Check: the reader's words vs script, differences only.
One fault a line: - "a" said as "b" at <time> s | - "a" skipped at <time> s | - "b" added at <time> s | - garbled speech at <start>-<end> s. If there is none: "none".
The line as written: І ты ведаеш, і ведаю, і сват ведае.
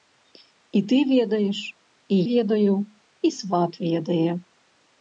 none